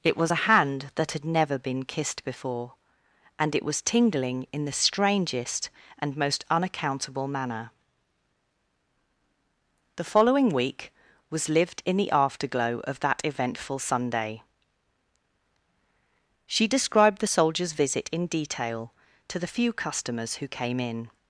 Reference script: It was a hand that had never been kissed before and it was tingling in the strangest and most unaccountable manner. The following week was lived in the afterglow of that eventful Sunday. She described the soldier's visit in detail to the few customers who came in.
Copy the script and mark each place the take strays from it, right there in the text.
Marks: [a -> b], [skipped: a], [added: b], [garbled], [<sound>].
It was a hand that had never been kissed before and it was tingling in the strangest and most unaccountable manner. The following week was lived in the afterglow of that eventful Sunday. She described the soldier's visit in detail to the few customers who came in.